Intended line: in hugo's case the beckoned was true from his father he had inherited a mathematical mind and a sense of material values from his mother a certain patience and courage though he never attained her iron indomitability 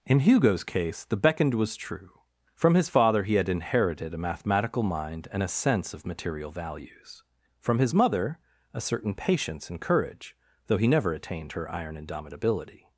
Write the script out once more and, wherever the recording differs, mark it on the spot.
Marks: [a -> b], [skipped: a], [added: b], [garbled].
in hugo's case the beckoned was true from his father he had inherited a mathematical mind and a sense of material values from his mother a certain patience and courage though he never attained her iron indomitability